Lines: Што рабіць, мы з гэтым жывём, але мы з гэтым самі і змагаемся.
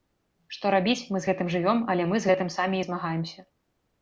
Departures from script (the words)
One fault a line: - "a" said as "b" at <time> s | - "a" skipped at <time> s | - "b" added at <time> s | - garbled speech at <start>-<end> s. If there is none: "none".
none